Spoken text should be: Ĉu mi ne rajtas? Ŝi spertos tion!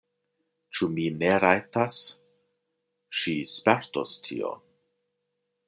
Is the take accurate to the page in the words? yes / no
yes